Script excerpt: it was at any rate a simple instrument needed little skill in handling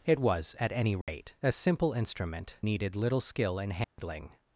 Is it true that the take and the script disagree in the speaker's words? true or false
false